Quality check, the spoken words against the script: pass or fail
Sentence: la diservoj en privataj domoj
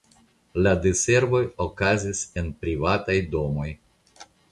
fail